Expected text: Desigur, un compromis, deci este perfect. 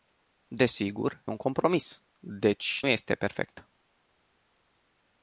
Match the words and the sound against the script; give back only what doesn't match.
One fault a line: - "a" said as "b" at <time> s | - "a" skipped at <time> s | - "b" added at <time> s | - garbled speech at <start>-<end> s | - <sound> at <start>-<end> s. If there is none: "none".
none